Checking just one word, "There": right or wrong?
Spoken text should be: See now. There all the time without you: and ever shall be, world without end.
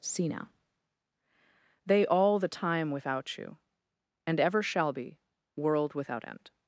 wrong